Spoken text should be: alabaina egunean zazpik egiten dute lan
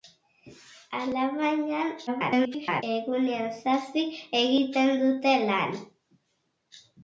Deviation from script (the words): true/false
true